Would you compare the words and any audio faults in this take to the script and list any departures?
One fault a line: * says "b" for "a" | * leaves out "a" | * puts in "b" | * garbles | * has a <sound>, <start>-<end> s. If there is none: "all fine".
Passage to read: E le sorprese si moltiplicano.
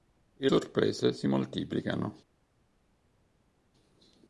* leaves out "le"